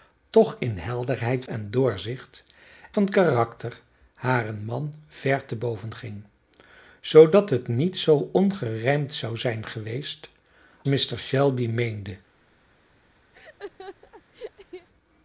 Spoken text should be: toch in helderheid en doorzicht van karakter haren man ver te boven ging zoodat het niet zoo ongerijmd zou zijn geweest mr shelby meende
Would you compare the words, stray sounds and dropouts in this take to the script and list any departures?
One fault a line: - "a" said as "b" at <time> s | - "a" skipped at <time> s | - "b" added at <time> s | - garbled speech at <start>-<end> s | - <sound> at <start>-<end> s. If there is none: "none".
- laugh at 13.3-14.9 s